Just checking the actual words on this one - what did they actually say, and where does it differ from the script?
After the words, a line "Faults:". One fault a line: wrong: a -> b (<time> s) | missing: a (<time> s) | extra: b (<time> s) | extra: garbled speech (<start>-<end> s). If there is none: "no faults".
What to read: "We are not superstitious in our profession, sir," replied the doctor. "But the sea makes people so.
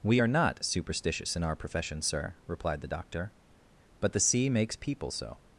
"We are not superstitious in our profession, sir," replied the doctor. "But the sea makes people so.
Faults:
no faults